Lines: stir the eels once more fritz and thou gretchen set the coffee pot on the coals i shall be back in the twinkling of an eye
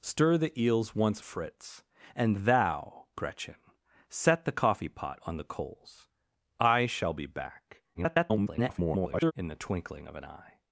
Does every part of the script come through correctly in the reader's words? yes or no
no